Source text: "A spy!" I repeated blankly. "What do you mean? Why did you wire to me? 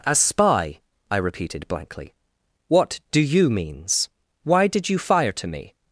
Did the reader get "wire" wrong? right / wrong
wrong